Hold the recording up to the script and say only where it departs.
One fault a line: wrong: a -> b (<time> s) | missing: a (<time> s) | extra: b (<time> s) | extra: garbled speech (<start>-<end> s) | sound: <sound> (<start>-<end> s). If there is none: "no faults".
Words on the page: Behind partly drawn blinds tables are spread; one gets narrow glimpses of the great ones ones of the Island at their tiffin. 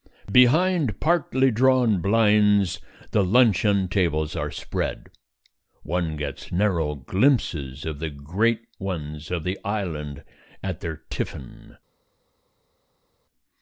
extra: the luncheon (3.1 s)
missing: ones (9.3 s)